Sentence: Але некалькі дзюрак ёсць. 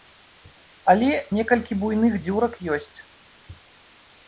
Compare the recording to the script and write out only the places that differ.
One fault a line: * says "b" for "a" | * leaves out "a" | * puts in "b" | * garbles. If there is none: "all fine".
* puts in "буйных"